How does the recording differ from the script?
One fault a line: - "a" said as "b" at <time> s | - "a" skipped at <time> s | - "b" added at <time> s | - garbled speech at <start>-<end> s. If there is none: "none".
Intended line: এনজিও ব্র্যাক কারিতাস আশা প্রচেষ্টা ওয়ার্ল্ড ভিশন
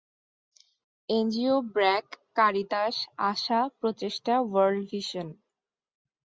none